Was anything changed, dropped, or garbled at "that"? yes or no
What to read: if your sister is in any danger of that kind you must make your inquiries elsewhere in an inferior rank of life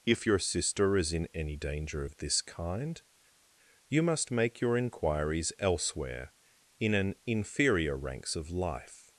yes